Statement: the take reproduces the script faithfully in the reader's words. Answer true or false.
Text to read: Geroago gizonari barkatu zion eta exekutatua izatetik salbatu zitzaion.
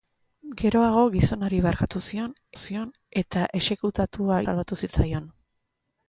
false